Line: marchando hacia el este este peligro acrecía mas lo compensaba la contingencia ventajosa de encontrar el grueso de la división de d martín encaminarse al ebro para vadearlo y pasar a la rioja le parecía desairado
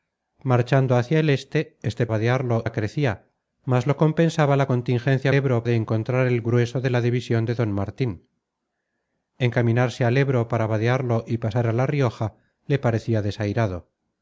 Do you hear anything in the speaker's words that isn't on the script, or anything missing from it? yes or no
yes